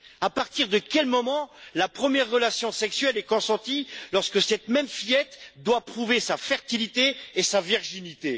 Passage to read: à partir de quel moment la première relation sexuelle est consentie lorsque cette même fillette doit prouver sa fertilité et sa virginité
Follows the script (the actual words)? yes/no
yes